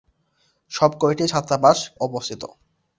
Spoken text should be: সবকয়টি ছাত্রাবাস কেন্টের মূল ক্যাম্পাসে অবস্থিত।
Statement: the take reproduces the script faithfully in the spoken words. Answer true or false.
false